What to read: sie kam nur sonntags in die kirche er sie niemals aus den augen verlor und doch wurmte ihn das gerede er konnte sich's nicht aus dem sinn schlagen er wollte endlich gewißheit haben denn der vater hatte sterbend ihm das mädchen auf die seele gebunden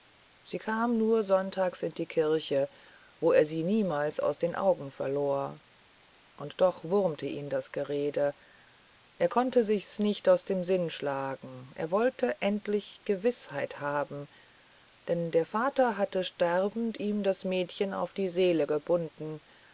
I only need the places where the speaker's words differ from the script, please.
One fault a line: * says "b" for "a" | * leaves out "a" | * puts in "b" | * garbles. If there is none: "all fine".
* puts in "wo"